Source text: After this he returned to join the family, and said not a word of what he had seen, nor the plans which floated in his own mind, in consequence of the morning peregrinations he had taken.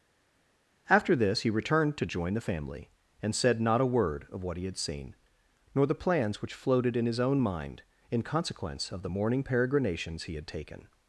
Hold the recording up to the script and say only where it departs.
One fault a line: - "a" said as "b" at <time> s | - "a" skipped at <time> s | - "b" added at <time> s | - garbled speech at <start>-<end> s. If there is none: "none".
none